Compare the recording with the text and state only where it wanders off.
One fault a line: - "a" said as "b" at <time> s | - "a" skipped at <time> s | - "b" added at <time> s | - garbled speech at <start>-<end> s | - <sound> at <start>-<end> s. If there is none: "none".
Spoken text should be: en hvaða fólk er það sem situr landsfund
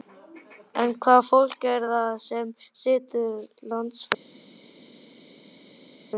none